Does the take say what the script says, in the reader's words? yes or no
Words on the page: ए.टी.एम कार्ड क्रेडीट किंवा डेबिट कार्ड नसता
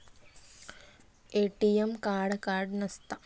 no